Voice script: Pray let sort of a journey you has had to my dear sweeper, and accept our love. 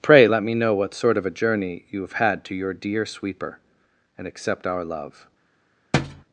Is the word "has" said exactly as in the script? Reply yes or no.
no